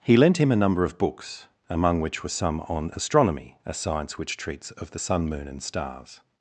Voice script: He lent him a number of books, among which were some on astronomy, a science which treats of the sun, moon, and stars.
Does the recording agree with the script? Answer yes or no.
yes